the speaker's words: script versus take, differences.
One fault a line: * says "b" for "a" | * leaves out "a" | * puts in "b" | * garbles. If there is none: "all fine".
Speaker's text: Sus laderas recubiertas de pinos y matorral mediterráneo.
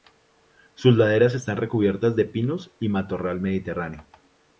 * puts in "están"